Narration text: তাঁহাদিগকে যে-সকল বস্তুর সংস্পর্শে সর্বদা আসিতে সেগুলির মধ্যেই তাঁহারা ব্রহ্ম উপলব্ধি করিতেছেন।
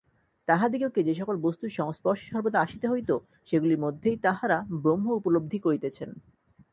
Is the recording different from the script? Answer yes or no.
yes